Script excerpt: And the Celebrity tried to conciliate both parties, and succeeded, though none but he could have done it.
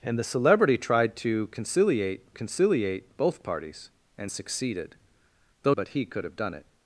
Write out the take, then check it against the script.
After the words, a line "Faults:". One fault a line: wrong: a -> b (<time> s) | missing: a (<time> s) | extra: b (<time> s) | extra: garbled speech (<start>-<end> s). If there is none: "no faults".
And the Celebrity tried to conciliate conciliate both parties, and succeeded, though but he could have done it.
Faults:
extra: conciliate (2.3 s)
missing: none (5.8 s)